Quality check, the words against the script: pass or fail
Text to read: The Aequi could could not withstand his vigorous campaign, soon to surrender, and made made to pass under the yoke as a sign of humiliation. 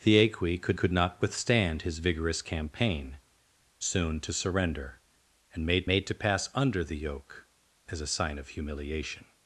pass